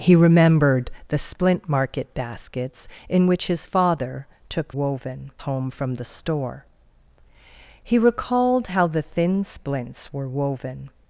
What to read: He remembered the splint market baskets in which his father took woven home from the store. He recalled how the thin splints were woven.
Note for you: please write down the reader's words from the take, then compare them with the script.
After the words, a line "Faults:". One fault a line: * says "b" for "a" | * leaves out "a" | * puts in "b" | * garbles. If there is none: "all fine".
He remembered the splint market baskets in which his father took woven home from the store. He recalled how the thin splints were woven.
Faults:
all fine